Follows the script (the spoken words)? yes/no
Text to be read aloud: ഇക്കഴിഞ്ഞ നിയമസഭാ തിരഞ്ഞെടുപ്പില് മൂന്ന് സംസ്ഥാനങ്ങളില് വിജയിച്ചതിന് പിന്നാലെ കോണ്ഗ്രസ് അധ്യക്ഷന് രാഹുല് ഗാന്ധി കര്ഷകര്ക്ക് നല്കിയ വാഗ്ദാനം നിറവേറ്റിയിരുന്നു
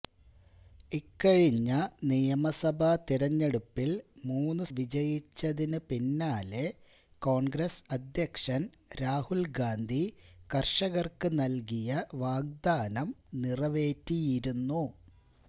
no